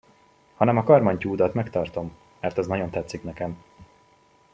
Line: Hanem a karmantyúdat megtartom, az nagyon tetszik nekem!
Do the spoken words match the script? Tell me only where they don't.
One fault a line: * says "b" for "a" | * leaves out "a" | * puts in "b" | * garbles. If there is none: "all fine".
* puts in "mert"